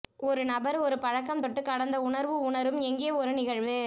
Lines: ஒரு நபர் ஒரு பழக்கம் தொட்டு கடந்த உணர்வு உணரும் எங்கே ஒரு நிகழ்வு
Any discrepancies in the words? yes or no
no